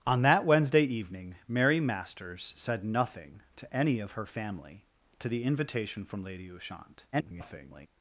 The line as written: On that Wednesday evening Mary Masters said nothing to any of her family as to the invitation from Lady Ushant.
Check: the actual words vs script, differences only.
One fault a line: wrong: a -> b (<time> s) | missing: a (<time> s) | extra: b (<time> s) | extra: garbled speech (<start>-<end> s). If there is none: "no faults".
missing: as (4.8 s)
extra: garbled speech (7.1-7.9 s)